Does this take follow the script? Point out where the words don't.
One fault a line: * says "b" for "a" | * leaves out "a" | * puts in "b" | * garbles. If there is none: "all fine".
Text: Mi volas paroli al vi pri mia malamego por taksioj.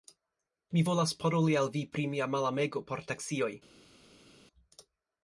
all fine